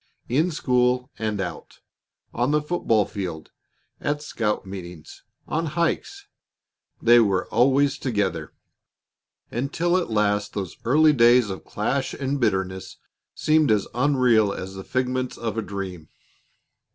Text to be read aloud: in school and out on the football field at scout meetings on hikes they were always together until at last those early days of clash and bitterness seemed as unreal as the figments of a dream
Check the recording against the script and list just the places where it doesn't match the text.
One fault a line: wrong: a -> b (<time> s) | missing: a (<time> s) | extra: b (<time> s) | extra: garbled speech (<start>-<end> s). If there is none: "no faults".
no faults